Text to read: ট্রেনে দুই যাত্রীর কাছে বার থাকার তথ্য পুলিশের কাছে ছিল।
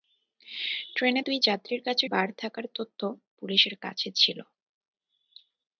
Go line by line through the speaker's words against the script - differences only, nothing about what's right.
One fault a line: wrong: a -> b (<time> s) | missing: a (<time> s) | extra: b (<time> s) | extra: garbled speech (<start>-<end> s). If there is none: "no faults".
no faults